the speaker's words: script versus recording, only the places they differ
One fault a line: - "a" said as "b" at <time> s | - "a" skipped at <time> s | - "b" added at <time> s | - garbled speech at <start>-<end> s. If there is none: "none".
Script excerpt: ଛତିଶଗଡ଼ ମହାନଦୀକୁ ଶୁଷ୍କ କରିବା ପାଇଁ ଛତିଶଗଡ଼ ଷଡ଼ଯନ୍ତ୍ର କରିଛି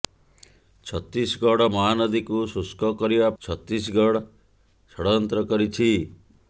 - "ପାଇଁ" skipped at 3.3 s